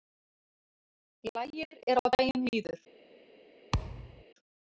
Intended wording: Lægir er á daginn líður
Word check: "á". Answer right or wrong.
right